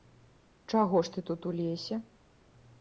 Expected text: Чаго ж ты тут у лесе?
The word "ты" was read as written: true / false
true